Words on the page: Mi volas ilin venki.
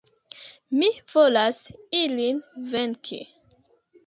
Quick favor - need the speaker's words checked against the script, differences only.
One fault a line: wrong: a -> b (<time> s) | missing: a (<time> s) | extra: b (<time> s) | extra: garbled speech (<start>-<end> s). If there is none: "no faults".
no faults